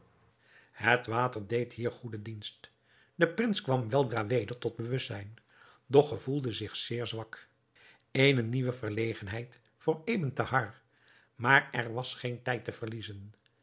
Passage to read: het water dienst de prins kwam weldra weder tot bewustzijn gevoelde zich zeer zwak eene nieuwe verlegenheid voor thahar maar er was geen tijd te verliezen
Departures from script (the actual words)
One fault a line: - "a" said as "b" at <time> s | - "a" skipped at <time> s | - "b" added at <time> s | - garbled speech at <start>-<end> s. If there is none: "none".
- "deed hier goede" added at 1.5 s
- "doch" added at 5.8 s
- "ebn" added at 10.0 s